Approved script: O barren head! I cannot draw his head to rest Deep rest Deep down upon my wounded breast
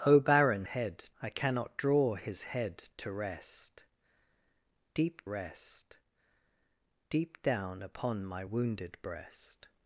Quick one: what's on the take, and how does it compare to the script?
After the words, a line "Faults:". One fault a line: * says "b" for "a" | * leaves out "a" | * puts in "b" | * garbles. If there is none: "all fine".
O barren head! I cannot draw his head to rest Deep rest Deep down upon my wounded breast
Faults:
all fine